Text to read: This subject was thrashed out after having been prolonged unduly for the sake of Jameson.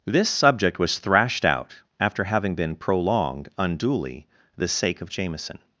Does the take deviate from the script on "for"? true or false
true